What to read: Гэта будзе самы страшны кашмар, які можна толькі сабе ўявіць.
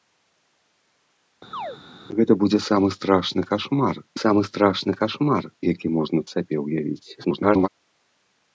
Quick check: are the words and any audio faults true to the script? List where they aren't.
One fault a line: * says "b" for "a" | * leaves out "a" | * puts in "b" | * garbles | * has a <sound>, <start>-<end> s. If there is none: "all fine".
* has a chirp, 1.5-1.8 s
* puts in "самы страшны кашмар"
* leaves out "толькі"
* garbles